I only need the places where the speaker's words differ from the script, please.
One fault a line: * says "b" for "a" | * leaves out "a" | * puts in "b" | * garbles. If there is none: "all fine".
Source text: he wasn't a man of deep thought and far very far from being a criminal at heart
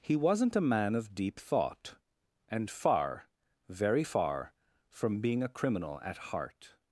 all fine